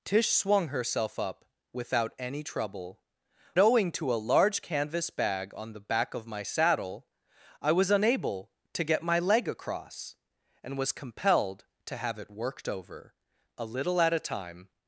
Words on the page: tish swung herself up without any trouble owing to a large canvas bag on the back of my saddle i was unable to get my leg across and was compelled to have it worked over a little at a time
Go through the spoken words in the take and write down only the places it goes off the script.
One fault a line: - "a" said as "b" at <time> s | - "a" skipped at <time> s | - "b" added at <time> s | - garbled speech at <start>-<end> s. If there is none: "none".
none